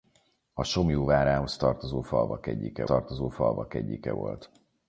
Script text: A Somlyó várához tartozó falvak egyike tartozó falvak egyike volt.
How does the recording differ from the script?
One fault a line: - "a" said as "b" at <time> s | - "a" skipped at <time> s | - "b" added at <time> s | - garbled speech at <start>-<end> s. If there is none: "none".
none